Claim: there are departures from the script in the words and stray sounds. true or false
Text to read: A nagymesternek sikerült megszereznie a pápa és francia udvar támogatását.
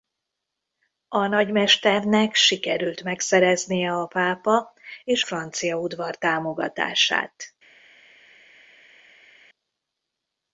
false